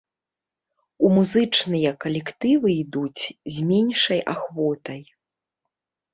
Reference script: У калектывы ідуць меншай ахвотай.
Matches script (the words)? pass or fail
fail